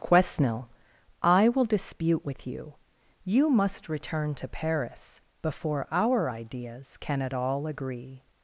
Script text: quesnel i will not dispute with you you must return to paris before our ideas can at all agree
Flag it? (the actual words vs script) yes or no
yes